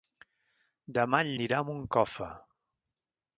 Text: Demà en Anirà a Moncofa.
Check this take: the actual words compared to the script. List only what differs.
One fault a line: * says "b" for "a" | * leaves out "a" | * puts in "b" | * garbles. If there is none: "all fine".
all fine